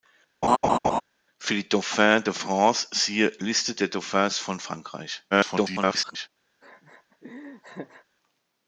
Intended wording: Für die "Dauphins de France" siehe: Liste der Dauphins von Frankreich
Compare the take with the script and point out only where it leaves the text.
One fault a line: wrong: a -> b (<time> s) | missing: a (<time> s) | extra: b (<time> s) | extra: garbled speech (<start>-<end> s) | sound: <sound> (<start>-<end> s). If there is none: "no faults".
sound: laugh (0.4-1.0 s)
extra: garbled speech (5.3-6.3 s)
sound: laugh (6.6-8.0 s)